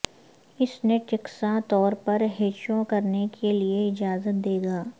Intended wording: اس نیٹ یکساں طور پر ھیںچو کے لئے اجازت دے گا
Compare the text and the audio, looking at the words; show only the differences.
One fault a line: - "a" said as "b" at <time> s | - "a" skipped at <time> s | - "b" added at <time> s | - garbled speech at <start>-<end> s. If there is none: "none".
- "کرنے" added at 2.9 s